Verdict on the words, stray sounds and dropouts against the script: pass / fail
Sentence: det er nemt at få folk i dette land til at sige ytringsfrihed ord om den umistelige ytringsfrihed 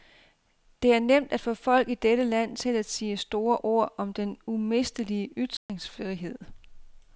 fail